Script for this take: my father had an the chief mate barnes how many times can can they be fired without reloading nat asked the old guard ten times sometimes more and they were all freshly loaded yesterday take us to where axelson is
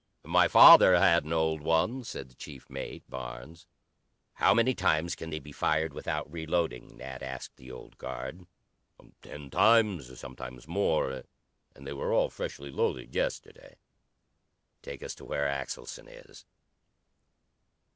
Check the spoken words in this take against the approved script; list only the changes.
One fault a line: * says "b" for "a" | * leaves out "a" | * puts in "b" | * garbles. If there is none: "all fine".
* puts in "old one said"
* leaves out "can"